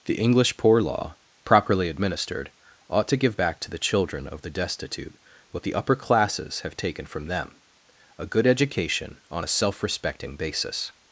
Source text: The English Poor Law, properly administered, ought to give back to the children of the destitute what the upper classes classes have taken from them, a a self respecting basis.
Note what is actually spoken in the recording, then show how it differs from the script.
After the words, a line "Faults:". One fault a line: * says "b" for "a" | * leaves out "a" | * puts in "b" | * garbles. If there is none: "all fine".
The English Poor Law, properly administered, ought to give back to the children of the destitute what the upper classes have taken from them, a good education on a self respecting basis.
Faults:
* leaves out "classes"
* puts in "good education on"